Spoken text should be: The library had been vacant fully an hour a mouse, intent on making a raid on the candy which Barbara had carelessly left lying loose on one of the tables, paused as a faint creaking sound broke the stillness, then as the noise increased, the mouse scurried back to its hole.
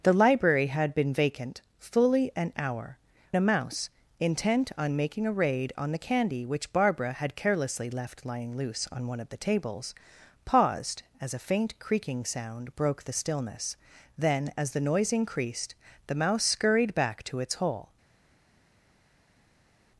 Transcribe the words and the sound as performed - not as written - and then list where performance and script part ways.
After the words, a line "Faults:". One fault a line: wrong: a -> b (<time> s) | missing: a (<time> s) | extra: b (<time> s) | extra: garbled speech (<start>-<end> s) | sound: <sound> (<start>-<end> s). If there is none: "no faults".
The library had been vacant fully an hour a mouse, intent on making a raid on the candy which Barbara had carelessly left lying loose on one of the tables, paused as a faint creaking sound broke the stillness, then as the noise increased, the mouse scurried back to its hole.
Faults:
no faults